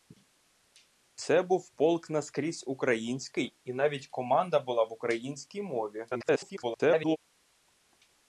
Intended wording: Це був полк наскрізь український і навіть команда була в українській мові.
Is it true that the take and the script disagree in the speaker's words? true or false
true